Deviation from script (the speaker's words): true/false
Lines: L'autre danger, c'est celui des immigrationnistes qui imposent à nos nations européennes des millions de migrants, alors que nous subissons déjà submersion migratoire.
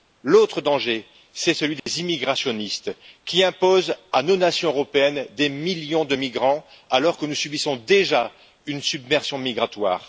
true